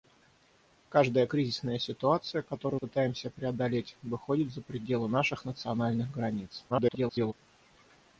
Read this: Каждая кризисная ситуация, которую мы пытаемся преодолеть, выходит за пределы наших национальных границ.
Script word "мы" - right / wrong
wrong